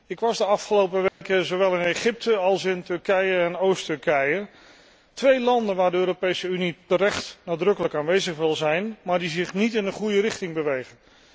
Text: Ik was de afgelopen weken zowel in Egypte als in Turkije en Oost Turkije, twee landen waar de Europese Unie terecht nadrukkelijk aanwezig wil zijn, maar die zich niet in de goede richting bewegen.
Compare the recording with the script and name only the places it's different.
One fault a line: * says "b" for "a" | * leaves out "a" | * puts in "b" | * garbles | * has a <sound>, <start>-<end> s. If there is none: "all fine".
* has a dropout, 1.1-1.2 s